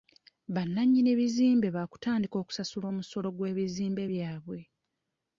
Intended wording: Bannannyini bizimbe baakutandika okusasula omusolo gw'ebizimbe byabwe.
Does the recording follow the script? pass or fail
pass